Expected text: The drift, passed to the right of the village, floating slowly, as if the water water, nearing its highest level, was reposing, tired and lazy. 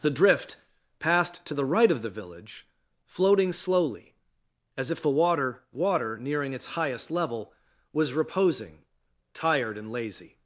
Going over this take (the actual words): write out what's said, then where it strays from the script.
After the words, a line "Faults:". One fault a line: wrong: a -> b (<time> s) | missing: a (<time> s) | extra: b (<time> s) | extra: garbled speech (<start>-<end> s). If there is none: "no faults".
The drift, passed to the right of the village, floating slowly, as if the water water, nearing its highest level, was reposing, tired and lazy.
Faults:
no faults